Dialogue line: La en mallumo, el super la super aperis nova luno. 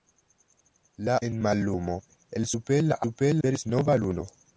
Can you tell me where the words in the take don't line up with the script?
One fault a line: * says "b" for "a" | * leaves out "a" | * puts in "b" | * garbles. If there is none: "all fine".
all fine